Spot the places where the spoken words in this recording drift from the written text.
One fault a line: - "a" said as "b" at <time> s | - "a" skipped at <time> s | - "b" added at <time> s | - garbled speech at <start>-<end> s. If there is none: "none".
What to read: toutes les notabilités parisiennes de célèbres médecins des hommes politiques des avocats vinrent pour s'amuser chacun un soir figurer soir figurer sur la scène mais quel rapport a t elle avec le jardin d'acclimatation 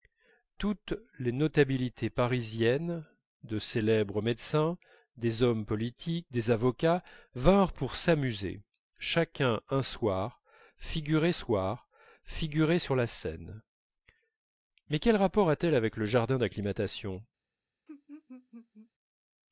none